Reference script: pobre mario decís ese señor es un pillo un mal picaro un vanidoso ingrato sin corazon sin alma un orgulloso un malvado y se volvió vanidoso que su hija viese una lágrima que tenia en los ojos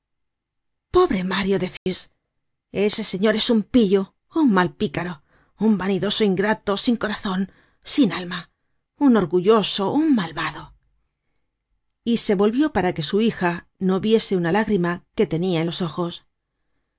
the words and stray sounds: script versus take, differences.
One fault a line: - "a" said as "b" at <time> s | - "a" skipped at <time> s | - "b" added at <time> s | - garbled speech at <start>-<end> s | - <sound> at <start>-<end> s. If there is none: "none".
- dropout at 1.8-1.9 s
- "vanidoso" said as "para" at 12.8 s
- "no" added at 13.9 s